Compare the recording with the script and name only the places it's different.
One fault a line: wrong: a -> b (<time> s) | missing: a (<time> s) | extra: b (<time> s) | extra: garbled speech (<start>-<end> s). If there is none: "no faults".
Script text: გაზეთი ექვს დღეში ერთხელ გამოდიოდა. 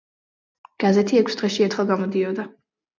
no faults